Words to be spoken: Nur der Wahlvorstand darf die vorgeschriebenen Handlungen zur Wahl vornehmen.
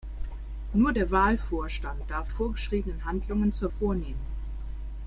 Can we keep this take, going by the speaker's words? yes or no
no